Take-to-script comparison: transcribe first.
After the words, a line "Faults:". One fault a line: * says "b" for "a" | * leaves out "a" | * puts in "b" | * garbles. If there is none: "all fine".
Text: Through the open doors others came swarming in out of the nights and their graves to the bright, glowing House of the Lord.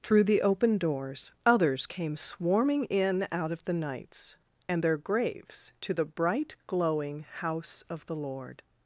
Through the open doors others came swarming in out of the nights and their graves to the bright, glowing House of the Lord.
Faults:
all fine